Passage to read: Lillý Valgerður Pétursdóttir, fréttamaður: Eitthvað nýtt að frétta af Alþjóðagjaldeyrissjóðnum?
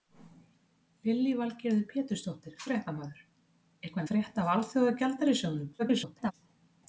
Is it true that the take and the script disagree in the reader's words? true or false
true